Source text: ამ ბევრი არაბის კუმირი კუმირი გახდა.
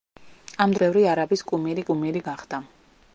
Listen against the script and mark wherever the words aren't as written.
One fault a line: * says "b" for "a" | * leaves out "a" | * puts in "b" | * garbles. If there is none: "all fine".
all fine